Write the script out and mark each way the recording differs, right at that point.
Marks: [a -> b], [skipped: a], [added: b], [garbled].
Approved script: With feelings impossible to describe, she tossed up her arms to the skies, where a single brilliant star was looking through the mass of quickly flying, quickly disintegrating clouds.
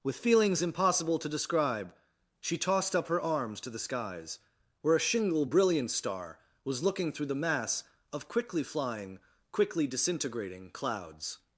With feelings impossible to describe, she tossed up her arms to the skies, where a [single -> shingle] brilliant star was looking through the mass of quickly flying, quickly disintegrating clouds.